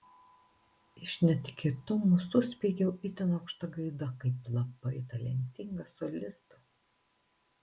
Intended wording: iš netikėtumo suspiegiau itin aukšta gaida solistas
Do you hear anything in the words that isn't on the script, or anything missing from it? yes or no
yes